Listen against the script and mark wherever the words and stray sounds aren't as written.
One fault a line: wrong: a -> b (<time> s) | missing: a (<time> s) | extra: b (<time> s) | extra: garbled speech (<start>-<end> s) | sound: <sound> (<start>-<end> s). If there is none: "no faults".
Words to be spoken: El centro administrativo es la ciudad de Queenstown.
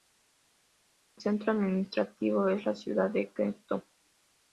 no faults